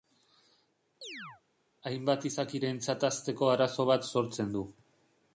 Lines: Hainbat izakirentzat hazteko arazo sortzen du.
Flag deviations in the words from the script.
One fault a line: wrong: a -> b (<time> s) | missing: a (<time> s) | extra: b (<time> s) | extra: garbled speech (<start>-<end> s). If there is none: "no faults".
extra: bat (3.9 s)